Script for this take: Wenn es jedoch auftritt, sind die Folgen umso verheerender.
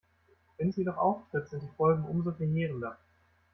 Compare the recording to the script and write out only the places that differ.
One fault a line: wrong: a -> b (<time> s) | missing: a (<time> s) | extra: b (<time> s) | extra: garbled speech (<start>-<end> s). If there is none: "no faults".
no faults